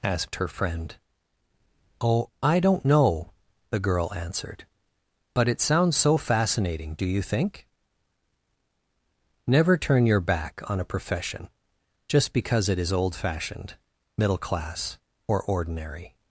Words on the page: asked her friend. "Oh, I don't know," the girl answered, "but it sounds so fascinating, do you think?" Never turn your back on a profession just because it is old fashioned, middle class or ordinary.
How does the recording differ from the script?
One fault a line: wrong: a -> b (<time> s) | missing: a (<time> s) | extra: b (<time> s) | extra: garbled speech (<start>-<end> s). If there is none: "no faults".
no faults